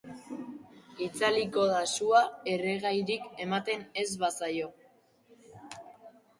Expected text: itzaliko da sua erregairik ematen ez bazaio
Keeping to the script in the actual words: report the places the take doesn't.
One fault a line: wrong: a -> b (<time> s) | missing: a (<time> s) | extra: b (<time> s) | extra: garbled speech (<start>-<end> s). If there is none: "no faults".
no faults